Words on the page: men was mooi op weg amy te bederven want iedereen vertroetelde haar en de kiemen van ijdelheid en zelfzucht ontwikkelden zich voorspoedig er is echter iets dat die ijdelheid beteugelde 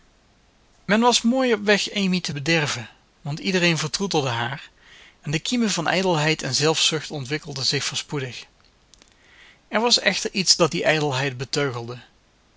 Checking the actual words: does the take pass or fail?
fail